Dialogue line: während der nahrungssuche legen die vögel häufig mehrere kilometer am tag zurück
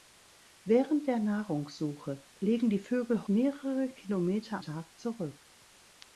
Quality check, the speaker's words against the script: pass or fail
fail